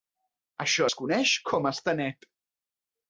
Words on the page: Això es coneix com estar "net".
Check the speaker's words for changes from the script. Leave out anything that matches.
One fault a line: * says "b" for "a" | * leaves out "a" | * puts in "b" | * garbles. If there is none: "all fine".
all fine